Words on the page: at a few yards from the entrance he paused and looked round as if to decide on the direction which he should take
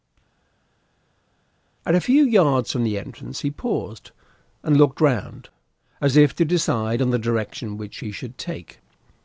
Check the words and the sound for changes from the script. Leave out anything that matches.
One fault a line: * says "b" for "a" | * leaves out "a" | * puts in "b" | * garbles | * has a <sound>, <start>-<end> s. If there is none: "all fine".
all fine